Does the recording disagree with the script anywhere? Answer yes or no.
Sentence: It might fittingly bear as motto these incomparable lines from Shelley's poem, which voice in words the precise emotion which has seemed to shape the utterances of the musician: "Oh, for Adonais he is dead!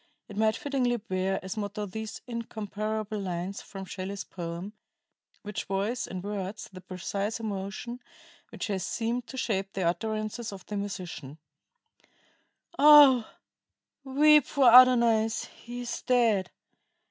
yes